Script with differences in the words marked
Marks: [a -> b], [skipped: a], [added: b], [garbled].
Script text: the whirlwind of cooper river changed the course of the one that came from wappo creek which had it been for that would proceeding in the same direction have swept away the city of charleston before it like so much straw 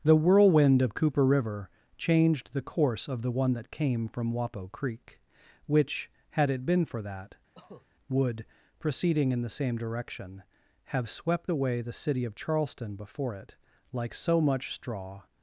the whirlwind of cooper river changed the course of the one that came from wappo creek which had it been for that would proceeding in the same direction have swept away the city of charleston before it like so much straw